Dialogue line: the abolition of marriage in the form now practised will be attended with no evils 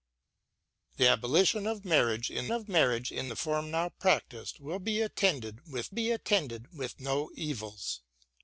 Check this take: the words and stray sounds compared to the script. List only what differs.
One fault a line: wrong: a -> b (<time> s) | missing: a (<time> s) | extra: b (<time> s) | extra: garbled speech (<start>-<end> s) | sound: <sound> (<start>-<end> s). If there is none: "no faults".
extra: of marriage in (2.5 s)
extra: be attended with (5.9 s)